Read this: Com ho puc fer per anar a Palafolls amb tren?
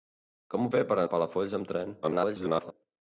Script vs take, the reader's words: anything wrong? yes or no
yes